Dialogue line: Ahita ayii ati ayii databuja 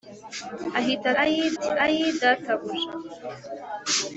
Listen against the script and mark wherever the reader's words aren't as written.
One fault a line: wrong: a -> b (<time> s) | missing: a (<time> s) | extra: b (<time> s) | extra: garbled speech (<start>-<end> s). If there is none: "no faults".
no faults